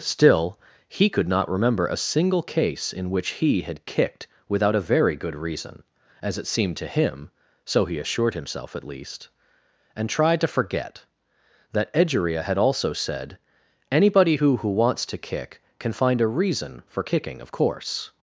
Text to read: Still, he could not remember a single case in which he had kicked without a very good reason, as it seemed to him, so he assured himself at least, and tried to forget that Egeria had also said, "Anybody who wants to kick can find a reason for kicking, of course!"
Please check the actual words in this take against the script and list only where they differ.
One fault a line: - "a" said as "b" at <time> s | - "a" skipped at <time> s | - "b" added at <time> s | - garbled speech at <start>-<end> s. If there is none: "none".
- "who" added at 14.6 s